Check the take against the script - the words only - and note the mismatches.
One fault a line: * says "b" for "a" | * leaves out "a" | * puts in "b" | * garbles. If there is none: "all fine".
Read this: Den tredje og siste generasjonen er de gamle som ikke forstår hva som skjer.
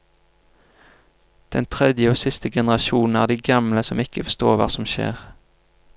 all fine